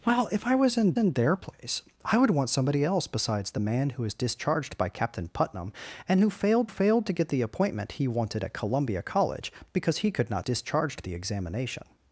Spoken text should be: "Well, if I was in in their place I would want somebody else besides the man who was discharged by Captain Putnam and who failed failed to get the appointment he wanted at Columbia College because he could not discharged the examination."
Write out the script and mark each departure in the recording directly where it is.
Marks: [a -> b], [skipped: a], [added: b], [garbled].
"Well, if I was in in their place I would want somebody else besides the man who was discharged by Captain Putnam and who failed failed to get the appointment he wanted at Columbia College because he could not discharged the examination."